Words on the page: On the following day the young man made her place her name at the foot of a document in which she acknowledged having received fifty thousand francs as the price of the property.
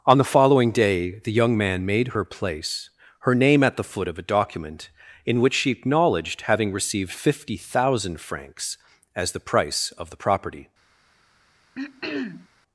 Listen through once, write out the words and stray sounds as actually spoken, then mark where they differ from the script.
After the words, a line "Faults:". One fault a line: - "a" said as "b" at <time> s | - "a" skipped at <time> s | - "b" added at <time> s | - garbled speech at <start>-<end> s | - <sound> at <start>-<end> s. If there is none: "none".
On the following day the young man made her place her name at the foot of a document in which she acknowledged having received fifty thousand francs as the price of the property.
Faults:
- throat clearing at 11.7-12.5 s